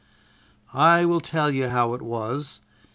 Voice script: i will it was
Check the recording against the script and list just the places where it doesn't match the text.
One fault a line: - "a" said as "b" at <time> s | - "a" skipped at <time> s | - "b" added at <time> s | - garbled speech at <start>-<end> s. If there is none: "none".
- "tell you how" added at 1.2 s